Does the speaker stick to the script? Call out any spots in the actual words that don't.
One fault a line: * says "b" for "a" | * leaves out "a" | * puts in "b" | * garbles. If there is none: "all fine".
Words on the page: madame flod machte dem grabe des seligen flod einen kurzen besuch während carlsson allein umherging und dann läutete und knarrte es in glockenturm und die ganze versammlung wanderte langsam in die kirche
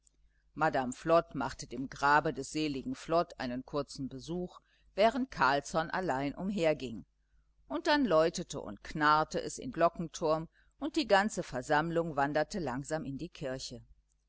all fine